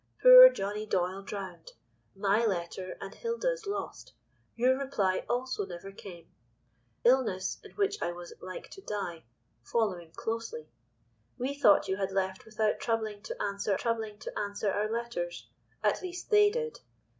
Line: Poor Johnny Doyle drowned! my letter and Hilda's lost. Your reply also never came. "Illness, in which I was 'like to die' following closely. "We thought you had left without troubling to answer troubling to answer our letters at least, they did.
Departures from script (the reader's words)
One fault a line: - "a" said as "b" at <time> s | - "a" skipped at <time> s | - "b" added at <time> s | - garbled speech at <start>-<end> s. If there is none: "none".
none